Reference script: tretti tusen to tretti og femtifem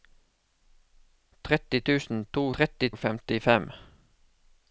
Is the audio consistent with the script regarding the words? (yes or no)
yes